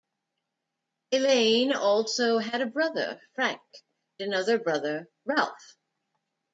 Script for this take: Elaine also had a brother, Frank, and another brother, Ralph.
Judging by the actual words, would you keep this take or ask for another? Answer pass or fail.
fail